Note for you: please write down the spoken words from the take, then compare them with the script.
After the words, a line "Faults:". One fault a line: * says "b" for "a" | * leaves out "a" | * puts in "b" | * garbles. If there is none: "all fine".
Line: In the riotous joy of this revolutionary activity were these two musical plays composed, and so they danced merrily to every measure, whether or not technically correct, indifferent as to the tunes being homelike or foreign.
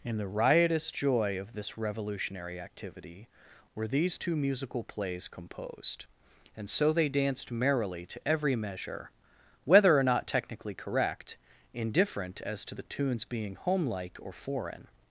In the riotous joy of this revolutionary activity were these two musical plays composed, and so they danced merrily to every measure, whether or not technically correct, indifferent as to the tunes being homelike or foreign.
Faults:
all fine